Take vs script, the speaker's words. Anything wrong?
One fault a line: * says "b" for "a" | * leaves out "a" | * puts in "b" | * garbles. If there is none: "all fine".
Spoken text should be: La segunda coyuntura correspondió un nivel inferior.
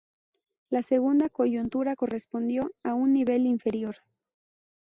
* puts in "a"